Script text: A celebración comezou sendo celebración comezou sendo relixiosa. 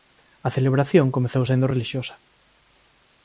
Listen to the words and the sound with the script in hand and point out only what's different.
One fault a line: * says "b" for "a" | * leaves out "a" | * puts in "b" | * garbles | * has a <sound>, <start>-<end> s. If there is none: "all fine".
* leaves out "celebración comezou sendo"